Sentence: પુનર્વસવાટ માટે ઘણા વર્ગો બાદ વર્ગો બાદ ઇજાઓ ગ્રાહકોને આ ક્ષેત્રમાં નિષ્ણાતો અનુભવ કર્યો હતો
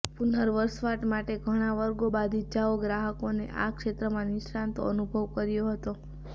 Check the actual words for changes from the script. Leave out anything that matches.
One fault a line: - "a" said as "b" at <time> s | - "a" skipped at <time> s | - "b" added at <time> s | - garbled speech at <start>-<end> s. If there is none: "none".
- "વર્ગો બાદ" skipped at 2.4 s